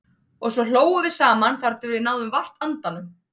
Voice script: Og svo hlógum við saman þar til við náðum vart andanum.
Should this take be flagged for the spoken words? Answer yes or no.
no